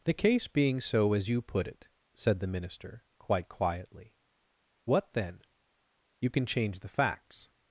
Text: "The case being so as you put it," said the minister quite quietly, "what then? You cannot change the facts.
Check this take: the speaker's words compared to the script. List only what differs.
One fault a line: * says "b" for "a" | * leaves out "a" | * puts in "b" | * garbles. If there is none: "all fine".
* says "can" for "cannot"